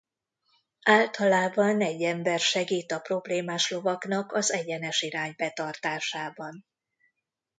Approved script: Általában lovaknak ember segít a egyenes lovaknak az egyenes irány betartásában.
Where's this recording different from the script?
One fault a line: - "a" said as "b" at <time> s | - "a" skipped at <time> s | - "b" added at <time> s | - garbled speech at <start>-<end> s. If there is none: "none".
- "lovaknak" said as "egy" at 1.8 s
- "egyenes" said as "problémás" at 3.0 s